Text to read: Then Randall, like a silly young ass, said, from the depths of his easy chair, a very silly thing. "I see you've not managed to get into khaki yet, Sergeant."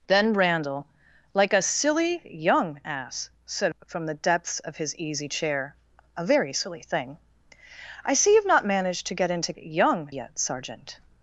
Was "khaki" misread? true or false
true